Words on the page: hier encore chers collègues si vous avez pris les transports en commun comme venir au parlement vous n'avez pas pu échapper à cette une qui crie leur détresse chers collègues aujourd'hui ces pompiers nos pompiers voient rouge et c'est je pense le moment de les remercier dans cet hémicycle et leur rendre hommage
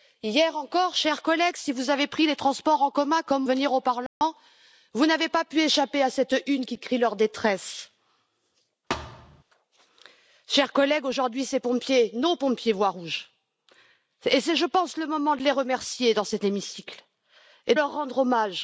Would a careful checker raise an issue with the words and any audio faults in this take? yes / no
yes